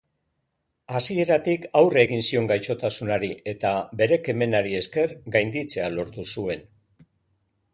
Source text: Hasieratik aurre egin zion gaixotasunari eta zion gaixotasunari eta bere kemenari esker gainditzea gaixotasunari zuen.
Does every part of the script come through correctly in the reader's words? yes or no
no